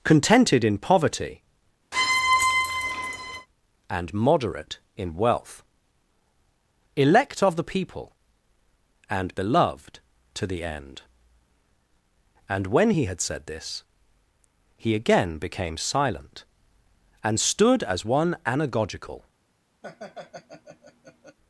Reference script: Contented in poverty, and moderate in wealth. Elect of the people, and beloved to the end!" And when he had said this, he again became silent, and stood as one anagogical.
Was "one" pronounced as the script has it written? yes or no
yes